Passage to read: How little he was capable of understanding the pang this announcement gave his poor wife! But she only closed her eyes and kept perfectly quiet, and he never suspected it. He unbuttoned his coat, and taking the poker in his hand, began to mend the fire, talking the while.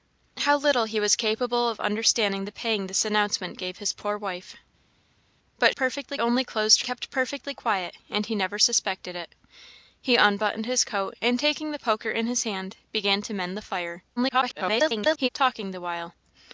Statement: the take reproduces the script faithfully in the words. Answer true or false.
false